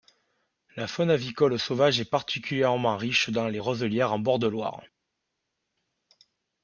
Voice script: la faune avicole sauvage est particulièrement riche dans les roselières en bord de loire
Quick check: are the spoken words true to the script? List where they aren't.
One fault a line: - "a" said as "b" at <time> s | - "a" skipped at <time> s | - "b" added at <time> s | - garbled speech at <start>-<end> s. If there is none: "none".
none